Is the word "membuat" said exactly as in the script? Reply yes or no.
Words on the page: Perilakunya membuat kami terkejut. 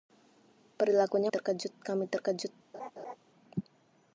no